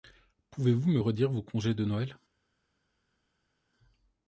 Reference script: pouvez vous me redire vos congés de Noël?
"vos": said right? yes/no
yes